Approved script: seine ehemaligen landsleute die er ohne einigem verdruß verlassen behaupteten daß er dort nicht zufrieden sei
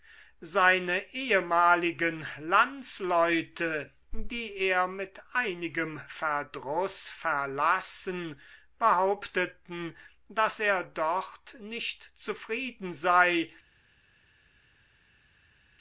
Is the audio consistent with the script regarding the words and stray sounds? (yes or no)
no